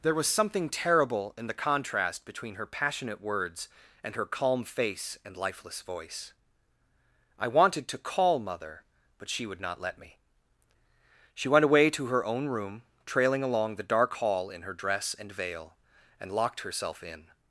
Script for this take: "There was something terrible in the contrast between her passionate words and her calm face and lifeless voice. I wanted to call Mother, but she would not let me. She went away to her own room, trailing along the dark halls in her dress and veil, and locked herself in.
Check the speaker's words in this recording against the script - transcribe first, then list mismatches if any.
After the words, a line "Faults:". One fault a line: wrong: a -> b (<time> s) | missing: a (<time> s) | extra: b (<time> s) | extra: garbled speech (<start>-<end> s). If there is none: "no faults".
"There was something terrible in the contrast between her passionate words and her calm face and lifeless voice. I wanted to call Mother, but she would not let me. She went away to her own room, trailing along the dark hall in her dress and veil, and locked herself in.
Faults:
wrong: halls -> hall (14.2 s)